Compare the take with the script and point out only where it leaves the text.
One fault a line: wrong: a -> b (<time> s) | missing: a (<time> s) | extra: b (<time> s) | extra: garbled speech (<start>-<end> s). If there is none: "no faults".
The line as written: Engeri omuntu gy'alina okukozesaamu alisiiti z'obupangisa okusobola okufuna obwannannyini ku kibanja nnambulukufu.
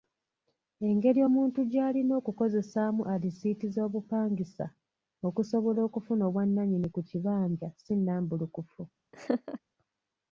extra: si (7.8 s)